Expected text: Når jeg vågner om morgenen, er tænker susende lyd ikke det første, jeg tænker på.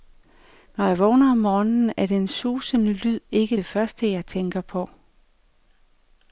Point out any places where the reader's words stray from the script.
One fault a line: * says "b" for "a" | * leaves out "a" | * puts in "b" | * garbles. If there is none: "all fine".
* says "den" for "tænker"